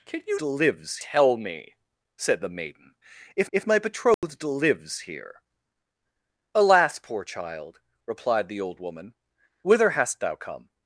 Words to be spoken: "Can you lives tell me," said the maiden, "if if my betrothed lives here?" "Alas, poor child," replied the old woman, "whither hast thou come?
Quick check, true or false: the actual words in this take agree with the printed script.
true